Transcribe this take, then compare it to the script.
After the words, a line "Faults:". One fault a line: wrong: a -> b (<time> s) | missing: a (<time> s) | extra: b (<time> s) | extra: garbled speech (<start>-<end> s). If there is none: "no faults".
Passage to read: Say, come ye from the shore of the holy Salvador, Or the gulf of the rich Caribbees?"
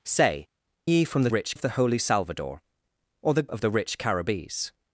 Say, ye from the rich of the holy Salvador, Or the of the rich Caribbees?"
Faults:
missing: come (0.5 s)
wrong: shore -> rich (1.3 s)
missing: gulf (3.5 s)